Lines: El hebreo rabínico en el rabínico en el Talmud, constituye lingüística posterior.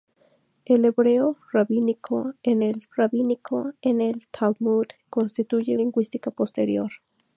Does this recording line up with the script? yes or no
yes